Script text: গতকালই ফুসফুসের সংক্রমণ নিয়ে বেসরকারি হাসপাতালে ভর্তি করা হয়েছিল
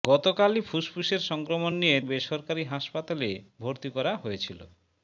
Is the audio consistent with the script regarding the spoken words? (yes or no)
yes